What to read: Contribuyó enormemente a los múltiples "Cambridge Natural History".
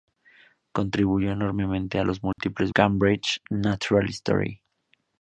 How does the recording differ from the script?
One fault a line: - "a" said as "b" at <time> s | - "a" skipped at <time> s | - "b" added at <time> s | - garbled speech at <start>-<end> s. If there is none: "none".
none